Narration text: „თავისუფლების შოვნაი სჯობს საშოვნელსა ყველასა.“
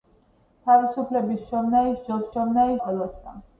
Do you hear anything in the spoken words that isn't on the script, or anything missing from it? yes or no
yes